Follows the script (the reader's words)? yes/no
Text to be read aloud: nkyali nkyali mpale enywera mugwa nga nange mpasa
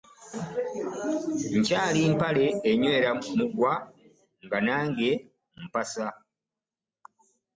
no